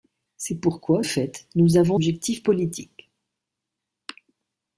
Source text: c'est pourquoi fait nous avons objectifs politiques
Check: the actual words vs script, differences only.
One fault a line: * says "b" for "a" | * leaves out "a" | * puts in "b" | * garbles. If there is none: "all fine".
all fine